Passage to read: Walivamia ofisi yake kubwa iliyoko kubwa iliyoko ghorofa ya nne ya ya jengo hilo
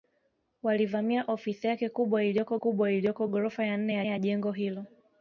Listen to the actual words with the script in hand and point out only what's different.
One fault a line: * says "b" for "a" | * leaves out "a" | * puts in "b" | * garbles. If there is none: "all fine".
all fine